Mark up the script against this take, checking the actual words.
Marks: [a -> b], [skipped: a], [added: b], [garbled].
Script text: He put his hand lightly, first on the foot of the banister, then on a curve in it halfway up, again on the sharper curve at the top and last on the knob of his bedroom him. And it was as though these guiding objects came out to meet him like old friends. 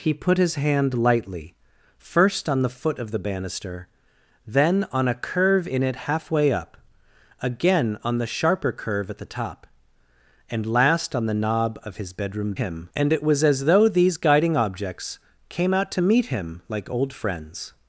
He put his hand lightly, first on the foot of the banister, then on a curve in it halfway up, again on the sharper curve at the top and last on the knob of his bedroom him. And it was as though these guiding objects came out to meet him like old friends.